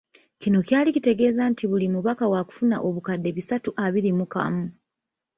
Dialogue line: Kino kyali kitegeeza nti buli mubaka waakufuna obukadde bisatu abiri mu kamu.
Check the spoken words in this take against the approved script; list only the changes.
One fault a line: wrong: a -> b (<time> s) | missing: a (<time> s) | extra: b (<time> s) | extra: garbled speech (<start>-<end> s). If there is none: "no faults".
no faults